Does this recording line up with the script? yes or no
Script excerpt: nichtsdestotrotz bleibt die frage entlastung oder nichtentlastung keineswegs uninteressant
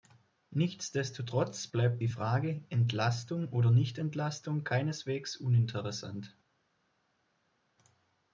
yes